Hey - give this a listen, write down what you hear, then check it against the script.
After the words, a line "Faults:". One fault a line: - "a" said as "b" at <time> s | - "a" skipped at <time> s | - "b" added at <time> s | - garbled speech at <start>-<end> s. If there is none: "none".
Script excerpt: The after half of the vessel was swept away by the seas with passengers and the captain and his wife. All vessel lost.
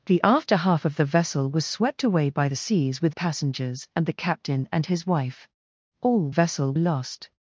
The after half of the vessel was swept away by the seas with passengers and the captain and his wife. All vessel lost.
Faults:
none